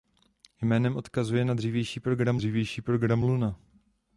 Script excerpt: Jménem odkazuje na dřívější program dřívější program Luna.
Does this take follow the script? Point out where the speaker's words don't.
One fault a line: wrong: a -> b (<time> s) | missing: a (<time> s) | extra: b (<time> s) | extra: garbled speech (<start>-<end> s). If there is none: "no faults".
no faults